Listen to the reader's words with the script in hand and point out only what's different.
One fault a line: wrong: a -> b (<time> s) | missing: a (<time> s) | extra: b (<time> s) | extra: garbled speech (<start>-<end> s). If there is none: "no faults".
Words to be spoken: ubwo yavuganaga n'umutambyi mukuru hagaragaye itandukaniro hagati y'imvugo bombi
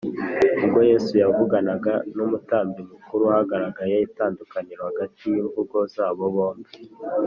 extra: yesu (0.9 s)
extra: zabo (5.9 s)